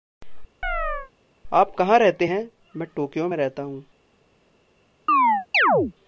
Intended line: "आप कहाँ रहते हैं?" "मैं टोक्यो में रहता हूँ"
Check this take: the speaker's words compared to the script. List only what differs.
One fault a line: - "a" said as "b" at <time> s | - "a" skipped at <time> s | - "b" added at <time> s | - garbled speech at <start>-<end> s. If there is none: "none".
none